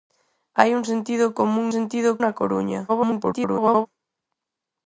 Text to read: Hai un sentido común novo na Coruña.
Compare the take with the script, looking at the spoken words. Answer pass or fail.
fail